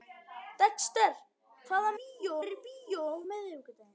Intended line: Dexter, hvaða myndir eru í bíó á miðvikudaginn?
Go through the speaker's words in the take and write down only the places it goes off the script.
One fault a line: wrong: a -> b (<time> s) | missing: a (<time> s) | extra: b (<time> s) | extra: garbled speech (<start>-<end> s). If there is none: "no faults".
wrong: myndir -> bíó (2.0 s)